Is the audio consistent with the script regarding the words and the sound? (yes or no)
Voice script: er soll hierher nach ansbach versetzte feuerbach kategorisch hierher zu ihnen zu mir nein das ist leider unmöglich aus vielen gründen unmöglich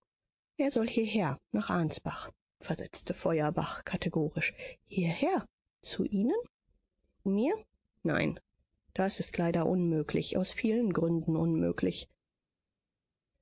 no